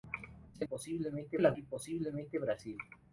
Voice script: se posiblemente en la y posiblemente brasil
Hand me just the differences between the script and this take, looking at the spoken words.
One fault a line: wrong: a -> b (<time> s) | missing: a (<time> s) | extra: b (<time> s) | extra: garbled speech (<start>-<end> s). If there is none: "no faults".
no faults